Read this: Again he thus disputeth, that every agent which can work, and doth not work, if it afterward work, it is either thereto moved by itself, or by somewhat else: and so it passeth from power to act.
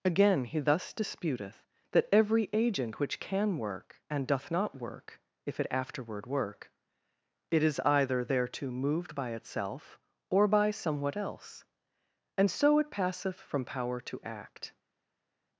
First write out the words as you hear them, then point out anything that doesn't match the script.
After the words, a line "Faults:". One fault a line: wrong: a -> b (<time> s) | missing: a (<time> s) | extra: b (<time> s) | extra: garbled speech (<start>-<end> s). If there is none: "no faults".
Again he thus disputeth, that every agent which can work, and doth not work, if it afterward work, it is either thereto moved by itself, or by somewhat else: and so it passeth from power to act.
Faults:
no faults